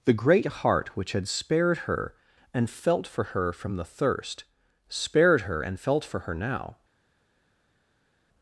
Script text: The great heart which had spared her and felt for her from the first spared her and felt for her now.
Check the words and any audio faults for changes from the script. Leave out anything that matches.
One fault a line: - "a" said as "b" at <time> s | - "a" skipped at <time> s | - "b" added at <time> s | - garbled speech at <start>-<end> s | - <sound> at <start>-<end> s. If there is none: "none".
- "first" said as "thirst" at 3.9 s